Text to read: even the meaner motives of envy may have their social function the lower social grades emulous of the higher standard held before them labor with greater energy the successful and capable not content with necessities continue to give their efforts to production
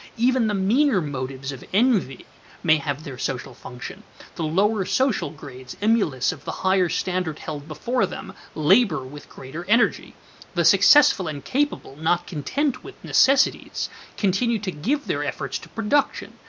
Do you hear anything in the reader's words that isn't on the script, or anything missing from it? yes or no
no